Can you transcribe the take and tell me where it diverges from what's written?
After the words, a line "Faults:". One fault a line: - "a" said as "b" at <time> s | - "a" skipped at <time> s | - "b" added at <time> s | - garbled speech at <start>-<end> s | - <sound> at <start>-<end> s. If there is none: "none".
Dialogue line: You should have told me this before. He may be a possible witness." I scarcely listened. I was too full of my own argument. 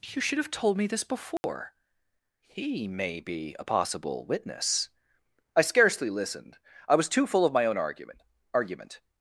You should have told me this before. He may be a possible witness." I scarcely listened. I was too full of my own argument argument.
Faults:
- dropout at 1.4-1.4 s
- "argument" added at 8.5 s